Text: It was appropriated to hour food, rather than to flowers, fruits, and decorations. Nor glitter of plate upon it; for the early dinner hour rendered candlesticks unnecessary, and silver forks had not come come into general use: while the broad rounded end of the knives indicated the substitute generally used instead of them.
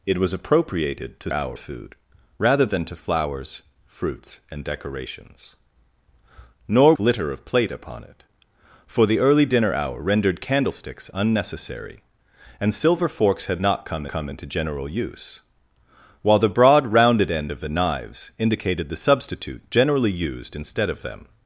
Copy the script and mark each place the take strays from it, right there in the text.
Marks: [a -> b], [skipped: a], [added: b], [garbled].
It was appropriated to hour food, rather than to flowers, fruits, and decorations. Nor glitter of plate upon it; for the early dinner hour rendered candlesticks unnecessary, and silver forks had not come come into general use: while the broad rounded end of the knives indicated the substitute generally used instead of them.